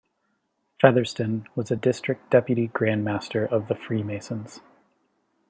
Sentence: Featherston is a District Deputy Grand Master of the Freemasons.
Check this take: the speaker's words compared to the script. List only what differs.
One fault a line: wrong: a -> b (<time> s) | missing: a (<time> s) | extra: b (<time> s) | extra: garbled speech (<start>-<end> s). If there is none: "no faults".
wrong: is -> was (1.6 s)